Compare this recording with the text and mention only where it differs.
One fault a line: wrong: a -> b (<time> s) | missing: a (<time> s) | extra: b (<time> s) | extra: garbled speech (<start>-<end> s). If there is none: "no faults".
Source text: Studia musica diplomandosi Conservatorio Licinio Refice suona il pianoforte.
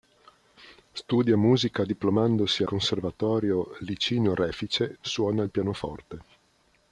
no faults